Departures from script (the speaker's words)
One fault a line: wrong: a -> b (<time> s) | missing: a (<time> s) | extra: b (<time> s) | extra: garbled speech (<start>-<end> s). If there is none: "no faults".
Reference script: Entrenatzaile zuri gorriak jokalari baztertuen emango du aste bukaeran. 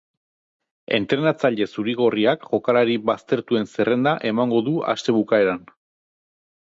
extra: zerrenda (3.7 s)